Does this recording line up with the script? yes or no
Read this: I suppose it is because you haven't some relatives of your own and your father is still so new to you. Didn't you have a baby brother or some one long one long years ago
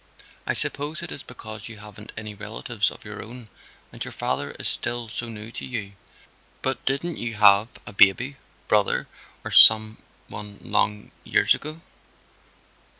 no